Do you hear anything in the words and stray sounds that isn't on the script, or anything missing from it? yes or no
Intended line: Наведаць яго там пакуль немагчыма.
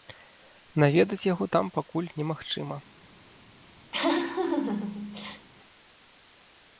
yes